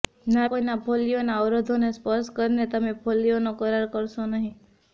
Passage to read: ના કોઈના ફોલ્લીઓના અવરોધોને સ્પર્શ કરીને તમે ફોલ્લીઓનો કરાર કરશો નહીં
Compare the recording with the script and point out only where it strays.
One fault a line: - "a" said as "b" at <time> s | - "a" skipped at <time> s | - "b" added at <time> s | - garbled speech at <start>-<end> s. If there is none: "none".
none